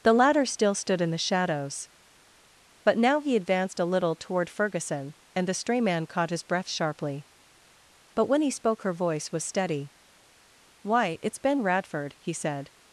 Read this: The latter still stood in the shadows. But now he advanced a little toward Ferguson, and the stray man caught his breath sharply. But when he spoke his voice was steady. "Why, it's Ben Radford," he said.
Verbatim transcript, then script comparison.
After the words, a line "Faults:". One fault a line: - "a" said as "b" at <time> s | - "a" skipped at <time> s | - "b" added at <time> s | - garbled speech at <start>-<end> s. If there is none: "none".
The latter still stood in the shadows. But now he advanced a little toward Ferguson, and the stray man caught his breath sharply. But when he spoke her voice was steady. "Why, it's Ben Radford," he said.
Faults:
- "his" said as "her" at 8.8 s